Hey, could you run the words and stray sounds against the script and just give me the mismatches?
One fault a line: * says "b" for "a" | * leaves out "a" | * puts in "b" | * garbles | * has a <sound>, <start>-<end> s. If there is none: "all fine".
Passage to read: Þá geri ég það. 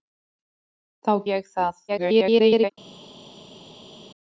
* leaves out "geri"
* garbles